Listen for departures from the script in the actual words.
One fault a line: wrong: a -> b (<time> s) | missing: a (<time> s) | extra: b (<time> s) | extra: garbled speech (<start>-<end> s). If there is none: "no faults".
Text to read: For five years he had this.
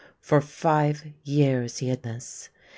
no faults